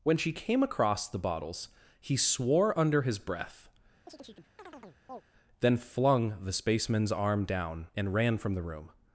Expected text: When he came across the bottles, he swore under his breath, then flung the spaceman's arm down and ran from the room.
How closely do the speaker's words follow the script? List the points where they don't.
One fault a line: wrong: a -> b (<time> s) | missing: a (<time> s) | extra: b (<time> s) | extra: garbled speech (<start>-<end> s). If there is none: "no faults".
wrong: he -> she (0.2 s)